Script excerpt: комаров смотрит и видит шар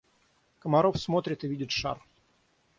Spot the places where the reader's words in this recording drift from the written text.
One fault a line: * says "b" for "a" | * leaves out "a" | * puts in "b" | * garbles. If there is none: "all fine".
all fine